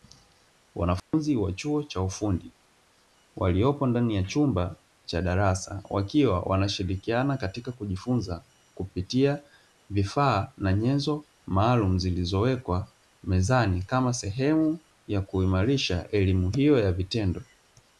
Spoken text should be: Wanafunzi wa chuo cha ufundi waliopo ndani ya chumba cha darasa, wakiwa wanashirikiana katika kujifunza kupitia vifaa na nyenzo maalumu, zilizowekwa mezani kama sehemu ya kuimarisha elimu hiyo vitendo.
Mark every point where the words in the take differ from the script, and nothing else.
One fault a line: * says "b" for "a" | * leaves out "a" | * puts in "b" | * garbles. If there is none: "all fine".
* puts in "ya"